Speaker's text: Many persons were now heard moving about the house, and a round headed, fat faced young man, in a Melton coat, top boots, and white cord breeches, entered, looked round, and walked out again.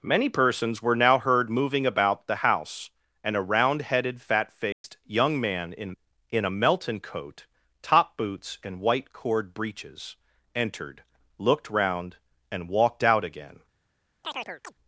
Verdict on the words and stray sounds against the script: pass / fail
fail